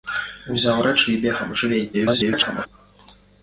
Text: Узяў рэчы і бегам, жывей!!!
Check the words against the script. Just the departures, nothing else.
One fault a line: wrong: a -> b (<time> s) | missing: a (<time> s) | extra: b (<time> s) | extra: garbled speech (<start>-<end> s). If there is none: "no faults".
extra: garbled speech (1.9-2.7 s)